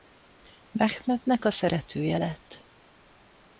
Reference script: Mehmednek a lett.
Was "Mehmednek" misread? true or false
false